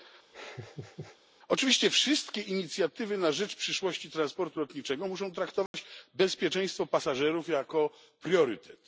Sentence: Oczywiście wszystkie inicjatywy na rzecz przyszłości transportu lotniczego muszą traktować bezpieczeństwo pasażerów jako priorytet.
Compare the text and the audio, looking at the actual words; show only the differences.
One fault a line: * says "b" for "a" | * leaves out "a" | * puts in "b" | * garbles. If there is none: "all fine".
all fine